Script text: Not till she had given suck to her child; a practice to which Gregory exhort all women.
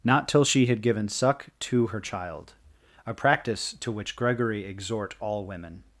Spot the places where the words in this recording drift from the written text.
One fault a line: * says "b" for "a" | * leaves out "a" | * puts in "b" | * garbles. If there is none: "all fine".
all fine